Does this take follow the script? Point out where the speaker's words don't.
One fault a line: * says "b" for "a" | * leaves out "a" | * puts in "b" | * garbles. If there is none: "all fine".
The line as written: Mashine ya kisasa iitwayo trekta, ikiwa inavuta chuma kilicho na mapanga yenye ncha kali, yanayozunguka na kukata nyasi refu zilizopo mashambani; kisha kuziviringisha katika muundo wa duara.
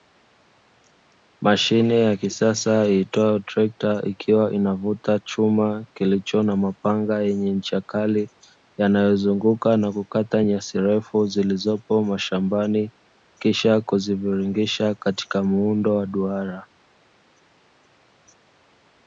all fine